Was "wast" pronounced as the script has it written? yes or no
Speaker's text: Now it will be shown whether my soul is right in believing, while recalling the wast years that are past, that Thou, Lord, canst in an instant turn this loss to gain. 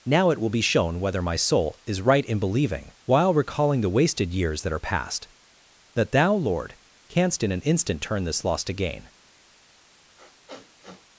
no